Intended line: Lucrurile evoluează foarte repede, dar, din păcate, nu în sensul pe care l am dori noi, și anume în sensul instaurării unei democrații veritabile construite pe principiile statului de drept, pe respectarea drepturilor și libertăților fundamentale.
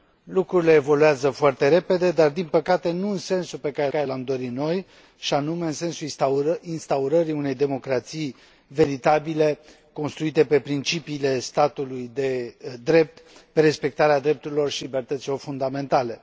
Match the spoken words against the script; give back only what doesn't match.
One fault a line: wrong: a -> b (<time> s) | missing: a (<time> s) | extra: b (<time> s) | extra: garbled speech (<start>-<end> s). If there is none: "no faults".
extra: care (3.9 s)